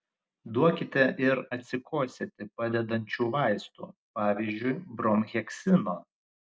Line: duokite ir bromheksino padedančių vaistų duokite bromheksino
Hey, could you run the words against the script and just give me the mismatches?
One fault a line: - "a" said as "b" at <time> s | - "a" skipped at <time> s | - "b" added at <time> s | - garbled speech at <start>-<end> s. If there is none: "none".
- "bromheksino" said as "atsikosėti" at 1.6 s
- "duokite" said as "pavyzdžiui" at 4.2 s